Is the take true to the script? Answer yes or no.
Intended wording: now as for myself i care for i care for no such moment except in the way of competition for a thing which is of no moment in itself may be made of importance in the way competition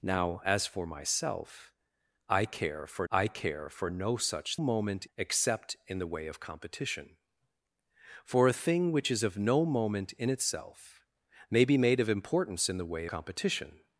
yes